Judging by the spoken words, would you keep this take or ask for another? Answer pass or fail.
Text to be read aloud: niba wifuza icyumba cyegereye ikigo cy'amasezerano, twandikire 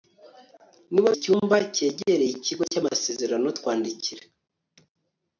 fail